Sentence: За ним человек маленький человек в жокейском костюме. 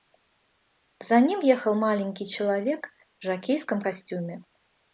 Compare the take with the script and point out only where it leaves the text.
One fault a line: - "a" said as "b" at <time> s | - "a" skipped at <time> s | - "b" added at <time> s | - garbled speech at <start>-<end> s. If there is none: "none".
- "человек" said as "ехал" at 1.4 s